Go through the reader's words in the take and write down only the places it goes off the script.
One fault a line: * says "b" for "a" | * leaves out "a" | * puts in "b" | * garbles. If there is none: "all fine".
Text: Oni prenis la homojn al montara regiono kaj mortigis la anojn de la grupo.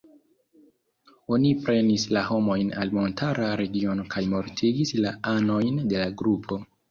all fine